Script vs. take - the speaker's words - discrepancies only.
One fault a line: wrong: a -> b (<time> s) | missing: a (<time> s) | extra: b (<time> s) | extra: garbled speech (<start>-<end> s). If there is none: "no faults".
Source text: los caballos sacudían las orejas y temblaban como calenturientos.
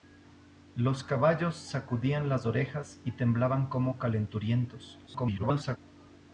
extra: garbled speech (5.1-5.8 s)